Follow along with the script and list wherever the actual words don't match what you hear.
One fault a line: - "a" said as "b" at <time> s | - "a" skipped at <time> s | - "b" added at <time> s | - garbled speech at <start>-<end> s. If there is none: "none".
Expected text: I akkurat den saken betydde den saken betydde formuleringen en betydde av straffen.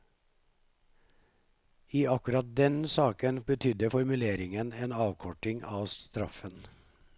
- "den saken betydde" skipped at 3.9 s
- "betydde" said as "avkorting" at 4.9 s